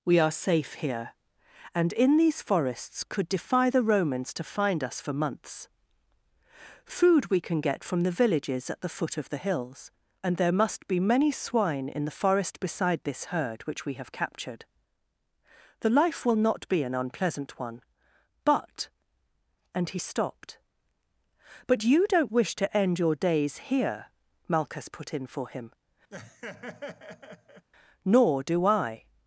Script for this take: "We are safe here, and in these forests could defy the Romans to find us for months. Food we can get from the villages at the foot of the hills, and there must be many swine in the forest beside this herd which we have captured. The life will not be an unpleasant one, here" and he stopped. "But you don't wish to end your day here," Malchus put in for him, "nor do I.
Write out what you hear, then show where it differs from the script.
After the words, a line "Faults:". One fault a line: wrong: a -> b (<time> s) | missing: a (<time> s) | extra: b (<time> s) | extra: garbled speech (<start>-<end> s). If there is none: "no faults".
"We are safe here, and in these forests could defy the Romans to find us for months. Food we can get from the villages at the foot of the hills, and there must be many swine in the forest beside this herd which we have captured. The life will not be an unpleasant one, but" and he stopped. "But you don't wish to end your days here," Malchus put in for him, "nor do I.
Faults:
wrong: here -> but (18.4 s)
wrong: day -> days (23.2 s)